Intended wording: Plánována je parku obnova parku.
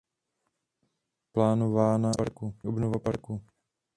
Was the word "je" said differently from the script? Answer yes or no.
no